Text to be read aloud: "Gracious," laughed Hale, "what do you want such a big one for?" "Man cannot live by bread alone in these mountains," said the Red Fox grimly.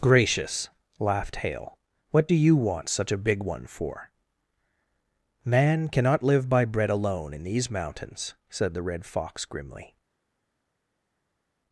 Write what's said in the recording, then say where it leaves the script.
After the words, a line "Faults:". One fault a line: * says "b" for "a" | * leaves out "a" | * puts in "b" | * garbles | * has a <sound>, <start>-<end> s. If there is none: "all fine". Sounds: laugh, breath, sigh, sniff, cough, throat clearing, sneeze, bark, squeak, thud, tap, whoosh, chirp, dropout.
"Gracious," laughed Hale, "what do you want such a big one for?" "Man cannot live by bread alone in these mountains," said the Red Fox grimly.
Faults:
all fine